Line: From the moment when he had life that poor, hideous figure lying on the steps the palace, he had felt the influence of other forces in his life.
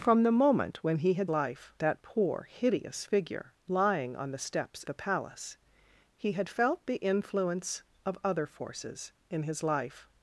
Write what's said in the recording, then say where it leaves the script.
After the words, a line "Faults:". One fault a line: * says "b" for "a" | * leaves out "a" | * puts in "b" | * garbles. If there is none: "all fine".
From the moment when he had life that poor, hideous figure lying on the steps the palace, he had felt the influence of other forces in his life.
Faults:
all fine